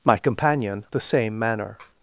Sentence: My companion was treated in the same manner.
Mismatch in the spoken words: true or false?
true